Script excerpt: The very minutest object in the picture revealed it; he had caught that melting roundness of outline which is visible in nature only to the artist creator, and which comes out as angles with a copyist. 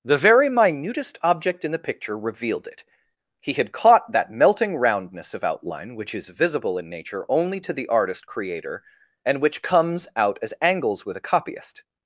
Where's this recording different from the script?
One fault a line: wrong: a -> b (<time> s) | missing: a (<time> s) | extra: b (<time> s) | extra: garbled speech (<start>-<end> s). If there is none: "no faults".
no faults